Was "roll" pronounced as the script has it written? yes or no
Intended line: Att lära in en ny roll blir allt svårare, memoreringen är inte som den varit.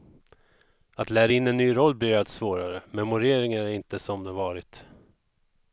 yes